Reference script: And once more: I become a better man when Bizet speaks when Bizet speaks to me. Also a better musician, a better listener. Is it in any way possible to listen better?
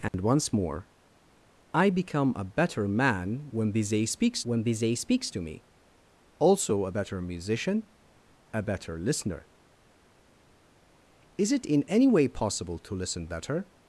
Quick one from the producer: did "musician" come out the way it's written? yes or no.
yes